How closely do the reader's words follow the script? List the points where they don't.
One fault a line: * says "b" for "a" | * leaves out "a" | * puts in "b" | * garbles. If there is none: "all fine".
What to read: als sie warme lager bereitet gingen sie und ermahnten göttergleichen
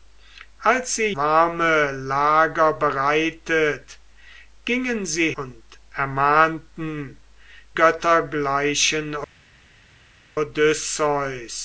all fine